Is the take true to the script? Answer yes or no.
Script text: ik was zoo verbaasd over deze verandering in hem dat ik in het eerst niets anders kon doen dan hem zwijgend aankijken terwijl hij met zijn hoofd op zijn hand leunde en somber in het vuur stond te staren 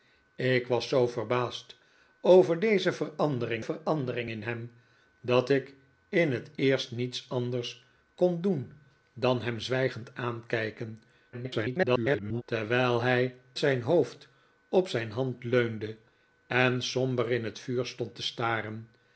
no